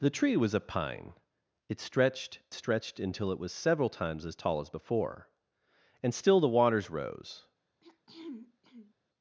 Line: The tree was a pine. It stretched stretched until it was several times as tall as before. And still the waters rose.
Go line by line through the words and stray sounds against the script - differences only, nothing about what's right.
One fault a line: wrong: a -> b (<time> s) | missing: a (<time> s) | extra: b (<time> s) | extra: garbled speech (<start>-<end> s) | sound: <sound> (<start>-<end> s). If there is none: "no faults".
sound: throat clearing (7.8-8.9 s)